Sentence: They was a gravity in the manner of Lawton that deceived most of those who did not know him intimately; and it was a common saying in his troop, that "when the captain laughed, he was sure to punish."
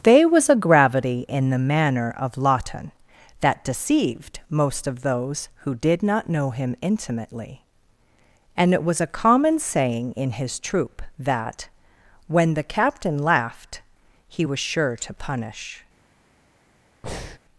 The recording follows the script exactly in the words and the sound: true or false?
false